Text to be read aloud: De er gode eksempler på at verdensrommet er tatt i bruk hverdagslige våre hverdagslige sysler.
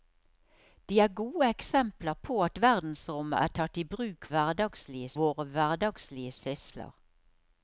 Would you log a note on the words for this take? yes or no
no